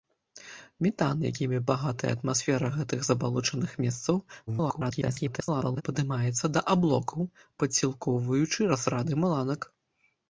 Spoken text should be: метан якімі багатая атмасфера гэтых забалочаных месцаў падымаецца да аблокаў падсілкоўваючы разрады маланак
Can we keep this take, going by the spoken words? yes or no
no